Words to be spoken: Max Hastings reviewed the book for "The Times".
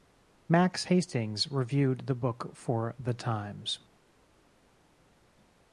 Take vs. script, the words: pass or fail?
pass